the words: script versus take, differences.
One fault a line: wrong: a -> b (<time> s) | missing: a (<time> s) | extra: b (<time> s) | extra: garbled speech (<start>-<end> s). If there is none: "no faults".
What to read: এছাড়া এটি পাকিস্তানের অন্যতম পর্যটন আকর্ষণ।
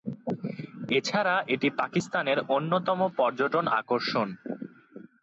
no faults